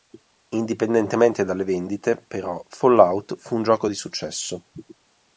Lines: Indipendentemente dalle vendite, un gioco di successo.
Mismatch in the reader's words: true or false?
true